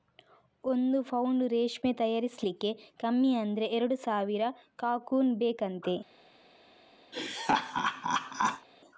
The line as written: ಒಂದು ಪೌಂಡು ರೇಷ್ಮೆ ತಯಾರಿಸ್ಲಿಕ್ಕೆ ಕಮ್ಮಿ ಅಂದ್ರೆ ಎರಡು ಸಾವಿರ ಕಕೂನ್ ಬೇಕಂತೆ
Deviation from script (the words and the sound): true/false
true